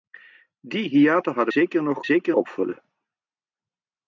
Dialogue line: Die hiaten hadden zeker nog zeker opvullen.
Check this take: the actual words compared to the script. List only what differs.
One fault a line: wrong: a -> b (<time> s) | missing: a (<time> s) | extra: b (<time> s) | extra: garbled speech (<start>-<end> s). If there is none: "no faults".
no faults